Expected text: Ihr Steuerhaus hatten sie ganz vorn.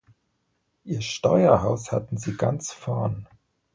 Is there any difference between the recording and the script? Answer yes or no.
no